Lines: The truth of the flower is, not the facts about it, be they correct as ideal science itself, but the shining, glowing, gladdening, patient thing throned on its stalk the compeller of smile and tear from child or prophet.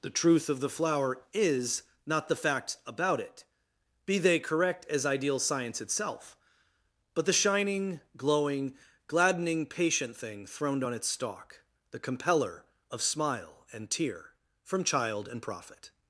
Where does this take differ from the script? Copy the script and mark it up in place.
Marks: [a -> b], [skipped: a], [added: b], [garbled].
The truth of the flower is, not the facts about it, be they correct as ideal science itself, but the shining, glowing, gladdening, patient thing throned on its stalk the compeller of smile and tear from child [or -> and] prophet.